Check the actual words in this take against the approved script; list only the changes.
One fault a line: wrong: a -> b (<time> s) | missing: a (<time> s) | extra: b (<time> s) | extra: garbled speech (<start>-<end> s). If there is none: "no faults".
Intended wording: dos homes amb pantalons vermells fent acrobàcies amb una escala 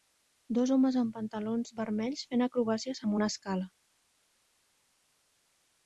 no faults